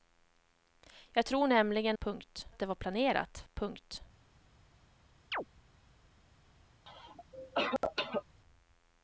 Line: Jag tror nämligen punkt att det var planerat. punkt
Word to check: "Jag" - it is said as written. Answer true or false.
true